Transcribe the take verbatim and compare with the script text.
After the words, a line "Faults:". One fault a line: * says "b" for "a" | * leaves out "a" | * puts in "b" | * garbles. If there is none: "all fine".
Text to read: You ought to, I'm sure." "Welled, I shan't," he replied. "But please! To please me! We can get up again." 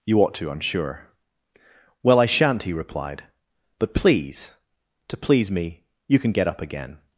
You ought to, I'm sure." "Well, I shan't," he replied. "But please! To please me! You can get up again."
Faults:
* says "Well" for "Welled"
* says "You" for "We"